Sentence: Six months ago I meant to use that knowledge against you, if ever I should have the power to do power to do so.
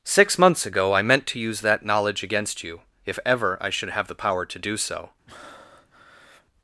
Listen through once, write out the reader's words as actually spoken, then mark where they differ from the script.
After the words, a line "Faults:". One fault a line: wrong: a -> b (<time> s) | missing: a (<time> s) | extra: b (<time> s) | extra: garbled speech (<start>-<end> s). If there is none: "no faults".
Six months ago I meant to use that knowledge against you, if ever I should have the power to do so.
Faults:
missing: power to do (4.8 s)